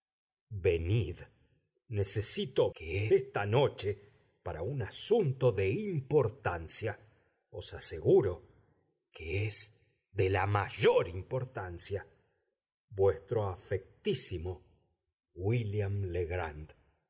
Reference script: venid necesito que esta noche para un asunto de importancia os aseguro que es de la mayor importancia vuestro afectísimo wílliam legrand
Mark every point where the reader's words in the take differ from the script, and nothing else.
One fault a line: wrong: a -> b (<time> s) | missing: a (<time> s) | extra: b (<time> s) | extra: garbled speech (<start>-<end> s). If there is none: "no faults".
no faults